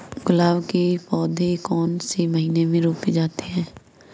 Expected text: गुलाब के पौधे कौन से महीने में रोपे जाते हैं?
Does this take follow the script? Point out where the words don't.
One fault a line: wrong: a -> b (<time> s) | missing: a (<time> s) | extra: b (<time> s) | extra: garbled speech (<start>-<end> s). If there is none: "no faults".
no faults